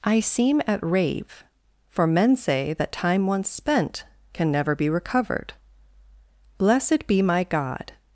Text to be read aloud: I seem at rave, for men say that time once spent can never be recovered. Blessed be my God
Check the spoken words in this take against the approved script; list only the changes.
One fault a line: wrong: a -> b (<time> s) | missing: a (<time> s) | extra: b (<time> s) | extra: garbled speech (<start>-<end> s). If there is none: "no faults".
no faults